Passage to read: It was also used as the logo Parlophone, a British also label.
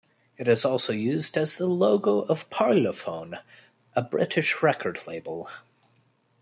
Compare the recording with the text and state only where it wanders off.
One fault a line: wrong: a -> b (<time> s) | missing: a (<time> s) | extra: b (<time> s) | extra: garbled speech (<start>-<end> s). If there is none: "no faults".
wrong: was -> is (0.5 s)
extra: of (2.2 s)
wrong: also -> record (4.6 s)